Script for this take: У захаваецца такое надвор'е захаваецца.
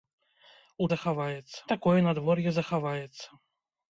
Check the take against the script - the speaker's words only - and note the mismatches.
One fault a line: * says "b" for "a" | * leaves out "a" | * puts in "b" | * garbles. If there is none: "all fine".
all fine